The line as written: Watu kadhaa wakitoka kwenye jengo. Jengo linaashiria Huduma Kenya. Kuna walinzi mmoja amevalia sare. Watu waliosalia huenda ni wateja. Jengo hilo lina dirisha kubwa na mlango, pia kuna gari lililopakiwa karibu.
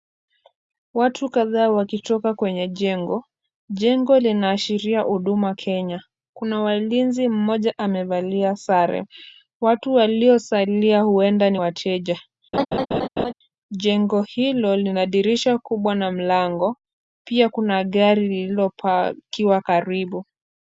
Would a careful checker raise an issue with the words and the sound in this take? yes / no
yes